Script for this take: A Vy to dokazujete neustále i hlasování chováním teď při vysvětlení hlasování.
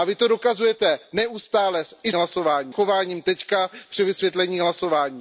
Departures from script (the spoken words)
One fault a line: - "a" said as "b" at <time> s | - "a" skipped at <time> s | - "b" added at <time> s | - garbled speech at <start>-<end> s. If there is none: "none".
none